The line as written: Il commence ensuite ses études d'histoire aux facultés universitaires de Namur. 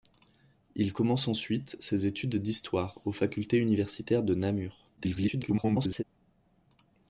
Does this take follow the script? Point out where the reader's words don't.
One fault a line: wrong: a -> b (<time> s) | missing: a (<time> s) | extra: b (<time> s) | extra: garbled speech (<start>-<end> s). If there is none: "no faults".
extra: garbled speech (5.0-6.0 s)